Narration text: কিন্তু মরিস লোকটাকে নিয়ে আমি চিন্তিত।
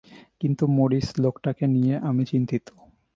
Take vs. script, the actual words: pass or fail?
pass